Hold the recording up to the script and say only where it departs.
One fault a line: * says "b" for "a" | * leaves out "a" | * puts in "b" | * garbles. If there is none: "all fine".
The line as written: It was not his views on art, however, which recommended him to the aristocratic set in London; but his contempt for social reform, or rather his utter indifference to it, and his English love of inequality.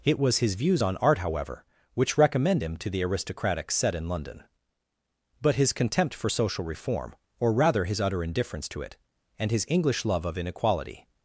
* leaves out "not"
* says "recommend" for "recommended"